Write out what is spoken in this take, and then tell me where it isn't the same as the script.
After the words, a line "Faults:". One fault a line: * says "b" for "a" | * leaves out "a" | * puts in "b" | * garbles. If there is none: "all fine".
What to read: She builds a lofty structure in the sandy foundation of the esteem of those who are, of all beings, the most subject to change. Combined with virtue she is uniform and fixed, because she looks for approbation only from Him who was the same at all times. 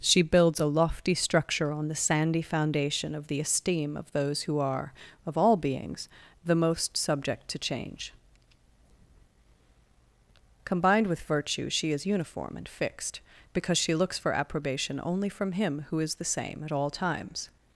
She builds a lofty structure on the sandy foundation of the esteem of those who are, of all beings, the most subject to change. Combined with virtue she is uniform and fixed, because she looks for approbation only from Him who is the same at all times.
Faults:
* says "on" for "in"
* says "is" for "was"